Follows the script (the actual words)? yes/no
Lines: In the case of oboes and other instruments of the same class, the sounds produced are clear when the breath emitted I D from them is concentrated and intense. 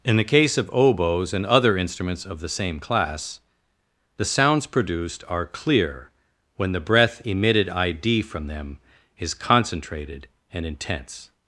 yes